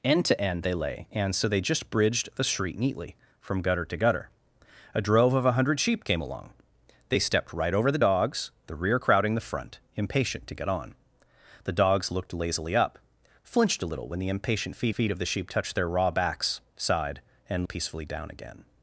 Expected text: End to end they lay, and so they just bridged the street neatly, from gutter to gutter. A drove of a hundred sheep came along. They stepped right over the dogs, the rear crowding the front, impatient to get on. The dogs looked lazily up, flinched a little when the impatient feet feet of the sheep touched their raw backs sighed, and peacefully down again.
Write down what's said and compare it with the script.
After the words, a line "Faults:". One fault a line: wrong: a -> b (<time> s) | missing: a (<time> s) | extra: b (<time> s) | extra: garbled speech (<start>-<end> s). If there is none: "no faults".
End to end they lay, and so they just bridged the street neatly, from gutter to gutter. A drove of a hundred sheep came along. They stepped right over the dogs, the rear crowding the front, impatient to get on. The dogs looked lazily up, flinched a little when the impatient feet feet of the sheep touched their raw backs sighed, and peacefully down again.
Faults:
no faults